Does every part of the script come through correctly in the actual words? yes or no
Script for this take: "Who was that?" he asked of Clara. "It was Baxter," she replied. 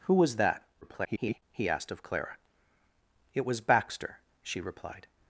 no